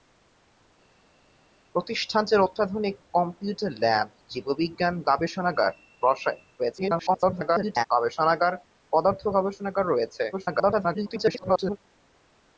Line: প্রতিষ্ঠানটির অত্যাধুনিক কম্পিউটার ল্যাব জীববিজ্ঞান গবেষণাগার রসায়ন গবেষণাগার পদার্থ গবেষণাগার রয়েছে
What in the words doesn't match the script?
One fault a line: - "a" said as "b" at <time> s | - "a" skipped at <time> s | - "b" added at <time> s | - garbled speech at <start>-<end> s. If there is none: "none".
- garbled speech at 6.6-7.9 s
- garbled speech at 10.3-11.8 s